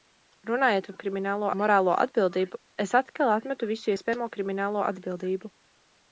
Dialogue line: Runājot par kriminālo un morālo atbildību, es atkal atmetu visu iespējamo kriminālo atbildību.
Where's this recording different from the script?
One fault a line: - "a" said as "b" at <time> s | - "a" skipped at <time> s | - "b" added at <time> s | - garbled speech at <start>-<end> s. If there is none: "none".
none